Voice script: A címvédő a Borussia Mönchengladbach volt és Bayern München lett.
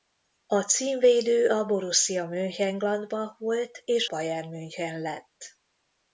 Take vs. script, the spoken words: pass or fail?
pass